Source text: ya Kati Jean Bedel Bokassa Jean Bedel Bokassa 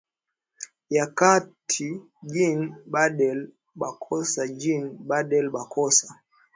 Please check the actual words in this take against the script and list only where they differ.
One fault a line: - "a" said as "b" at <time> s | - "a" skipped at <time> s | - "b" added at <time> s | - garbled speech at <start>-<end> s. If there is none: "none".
none